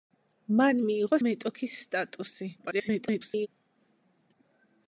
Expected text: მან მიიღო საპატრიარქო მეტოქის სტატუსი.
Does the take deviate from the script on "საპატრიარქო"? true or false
true